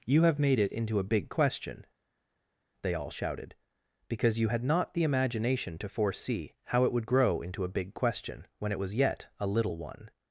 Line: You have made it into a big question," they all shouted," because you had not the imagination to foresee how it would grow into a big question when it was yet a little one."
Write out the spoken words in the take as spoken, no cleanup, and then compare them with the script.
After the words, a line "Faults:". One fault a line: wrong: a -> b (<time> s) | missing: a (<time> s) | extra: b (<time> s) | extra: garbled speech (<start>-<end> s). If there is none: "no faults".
You have made it into a big question," they all shouted," because you had not the imagination to foresee how it would grow into a big question when it was yet a little one."
Faults:
no faults